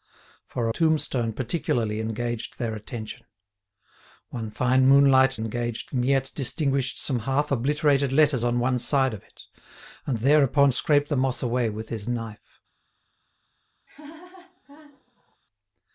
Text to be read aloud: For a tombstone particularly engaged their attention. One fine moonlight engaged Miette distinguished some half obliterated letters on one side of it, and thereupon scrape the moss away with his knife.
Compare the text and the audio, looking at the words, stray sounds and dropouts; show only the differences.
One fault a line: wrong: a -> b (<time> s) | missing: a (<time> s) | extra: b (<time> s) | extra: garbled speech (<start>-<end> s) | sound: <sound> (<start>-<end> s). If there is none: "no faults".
sound: laugh (13.9-15.4 s)